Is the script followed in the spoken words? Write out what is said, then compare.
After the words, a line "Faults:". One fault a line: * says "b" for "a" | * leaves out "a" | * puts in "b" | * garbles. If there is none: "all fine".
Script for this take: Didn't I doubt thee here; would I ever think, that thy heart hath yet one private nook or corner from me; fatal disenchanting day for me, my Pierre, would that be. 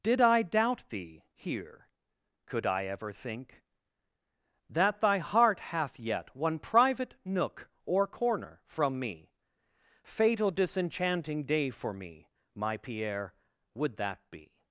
Did I doubt thee here; could I ever think, that thy heart hath yet one private nook or corner from me; fatal disenchanting day for me, my Pierre, would that be.
Faults:
* says "Did" for "Didn't"
* says "could" for "would"